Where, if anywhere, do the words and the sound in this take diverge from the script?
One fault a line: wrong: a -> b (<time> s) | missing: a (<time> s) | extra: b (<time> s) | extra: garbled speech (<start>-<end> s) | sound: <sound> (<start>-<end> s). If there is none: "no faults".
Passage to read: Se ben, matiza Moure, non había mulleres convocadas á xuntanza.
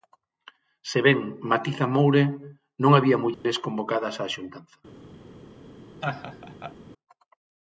sound: dropout (3.3-3.4 s)
sound: laugh (6.0-6.8 s)